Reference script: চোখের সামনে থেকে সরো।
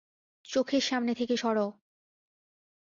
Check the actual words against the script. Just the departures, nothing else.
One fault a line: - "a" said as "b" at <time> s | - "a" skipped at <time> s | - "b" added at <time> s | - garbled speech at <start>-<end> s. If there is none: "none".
none